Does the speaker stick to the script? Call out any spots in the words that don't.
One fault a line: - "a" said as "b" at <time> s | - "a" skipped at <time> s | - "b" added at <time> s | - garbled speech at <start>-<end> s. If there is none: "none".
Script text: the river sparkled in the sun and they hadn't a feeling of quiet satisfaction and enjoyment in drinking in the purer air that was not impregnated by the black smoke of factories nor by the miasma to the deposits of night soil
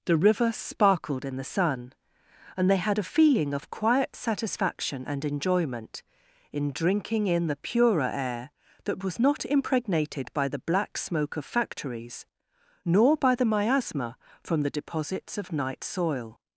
- "hadn't" said as "had" at 2.8 s
- "to" said as "from" at 14.4 s